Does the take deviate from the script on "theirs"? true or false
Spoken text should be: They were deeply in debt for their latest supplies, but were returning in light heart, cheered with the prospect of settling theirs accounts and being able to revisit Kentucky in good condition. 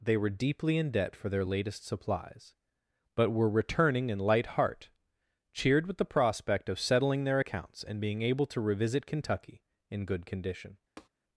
true